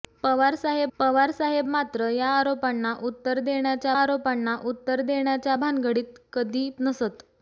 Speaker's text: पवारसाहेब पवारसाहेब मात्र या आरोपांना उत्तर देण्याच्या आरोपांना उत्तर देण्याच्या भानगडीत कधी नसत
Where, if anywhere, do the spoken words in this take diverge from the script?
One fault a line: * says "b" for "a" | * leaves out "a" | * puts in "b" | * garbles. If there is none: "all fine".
all fine